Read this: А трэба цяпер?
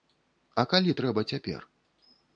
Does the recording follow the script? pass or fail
fail